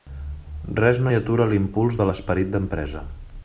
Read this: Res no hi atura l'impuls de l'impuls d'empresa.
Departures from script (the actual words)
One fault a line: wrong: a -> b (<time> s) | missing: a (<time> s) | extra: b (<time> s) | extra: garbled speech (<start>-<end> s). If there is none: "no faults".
wrong: l'impuls -> l'esperit (2.1 s)